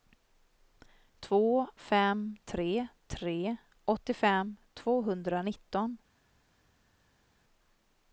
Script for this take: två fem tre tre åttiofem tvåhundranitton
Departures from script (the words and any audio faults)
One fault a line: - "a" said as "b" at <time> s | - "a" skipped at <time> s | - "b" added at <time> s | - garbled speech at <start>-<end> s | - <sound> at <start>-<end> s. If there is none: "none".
none